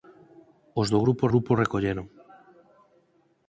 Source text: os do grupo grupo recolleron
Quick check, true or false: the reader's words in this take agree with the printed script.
true